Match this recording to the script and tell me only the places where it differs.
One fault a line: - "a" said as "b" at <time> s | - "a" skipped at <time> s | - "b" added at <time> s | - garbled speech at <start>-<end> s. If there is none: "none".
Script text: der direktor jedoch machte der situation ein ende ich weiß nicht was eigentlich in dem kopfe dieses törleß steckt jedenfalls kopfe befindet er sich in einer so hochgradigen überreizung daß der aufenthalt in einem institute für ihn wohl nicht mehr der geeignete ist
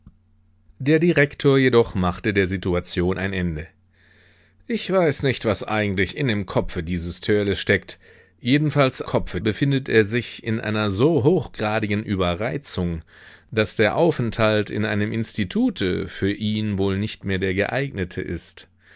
none